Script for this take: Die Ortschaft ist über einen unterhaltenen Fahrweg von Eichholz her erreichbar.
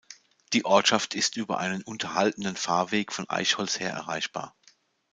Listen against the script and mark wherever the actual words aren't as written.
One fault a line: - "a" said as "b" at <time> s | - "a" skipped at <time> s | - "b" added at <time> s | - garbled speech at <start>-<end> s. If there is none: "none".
none